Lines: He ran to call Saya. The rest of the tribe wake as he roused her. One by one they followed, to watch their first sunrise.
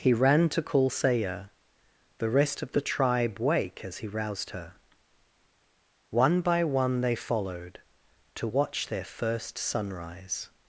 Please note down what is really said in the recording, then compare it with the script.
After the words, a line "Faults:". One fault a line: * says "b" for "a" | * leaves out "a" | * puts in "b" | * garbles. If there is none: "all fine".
He ran to call Saya. The rest of the tribe wake as he roused her. One by one they followed, to watch their first sunrise.
Faults:
all fine